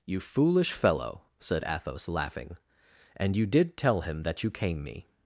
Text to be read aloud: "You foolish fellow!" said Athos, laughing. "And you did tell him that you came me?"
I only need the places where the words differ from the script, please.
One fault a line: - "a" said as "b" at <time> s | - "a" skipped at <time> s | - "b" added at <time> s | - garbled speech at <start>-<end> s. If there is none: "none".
none